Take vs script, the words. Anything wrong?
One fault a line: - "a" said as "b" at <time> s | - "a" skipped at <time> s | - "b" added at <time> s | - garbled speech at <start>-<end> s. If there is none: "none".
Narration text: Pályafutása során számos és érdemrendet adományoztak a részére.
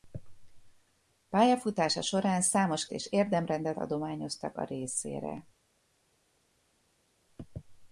none